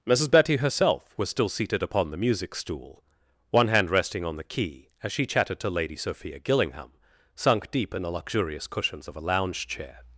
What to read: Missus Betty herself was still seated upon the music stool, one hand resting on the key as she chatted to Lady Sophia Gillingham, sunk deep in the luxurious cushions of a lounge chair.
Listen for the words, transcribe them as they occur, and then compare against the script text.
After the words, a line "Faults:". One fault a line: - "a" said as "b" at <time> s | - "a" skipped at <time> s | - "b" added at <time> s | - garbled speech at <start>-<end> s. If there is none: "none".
Missus Betty herself was still seated upon the music stool, one hand resting on the key as she chatted to Lady Sophia Gillingham, sunk deep in the luxurious cushions of a lounge chair.
Faults:
none